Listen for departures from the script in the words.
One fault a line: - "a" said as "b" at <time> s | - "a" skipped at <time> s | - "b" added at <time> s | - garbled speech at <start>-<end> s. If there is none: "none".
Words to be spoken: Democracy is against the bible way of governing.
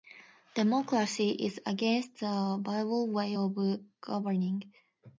none